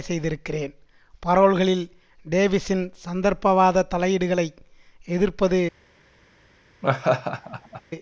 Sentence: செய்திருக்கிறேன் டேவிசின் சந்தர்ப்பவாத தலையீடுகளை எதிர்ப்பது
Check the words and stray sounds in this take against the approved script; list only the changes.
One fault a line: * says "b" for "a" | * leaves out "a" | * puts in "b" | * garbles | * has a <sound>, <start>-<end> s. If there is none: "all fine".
* puts in "பரோல்களில்"
* has a laugh, 6.8-7.8 s